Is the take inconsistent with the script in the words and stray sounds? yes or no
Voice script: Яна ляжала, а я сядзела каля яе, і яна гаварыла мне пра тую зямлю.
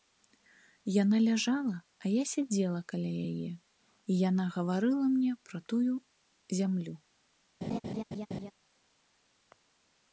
yes